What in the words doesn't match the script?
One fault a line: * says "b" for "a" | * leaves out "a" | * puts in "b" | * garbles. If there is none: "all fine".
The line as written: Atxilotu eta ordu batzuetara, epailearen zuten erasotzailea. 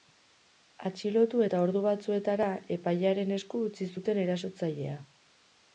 * puts in "esku utzi"